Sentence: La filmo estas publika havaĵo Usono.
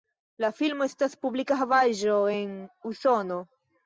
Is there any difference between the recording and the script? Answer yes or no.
yes